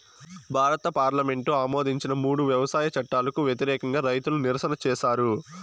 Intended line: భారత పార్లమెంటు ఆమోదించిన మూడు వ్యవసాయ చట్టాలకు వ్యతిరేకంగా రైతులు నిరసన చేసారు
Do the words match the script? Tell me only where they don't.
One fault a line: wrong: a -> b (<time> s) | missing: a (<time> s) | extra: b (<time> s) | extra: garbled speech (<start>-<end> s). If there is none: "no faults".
no faults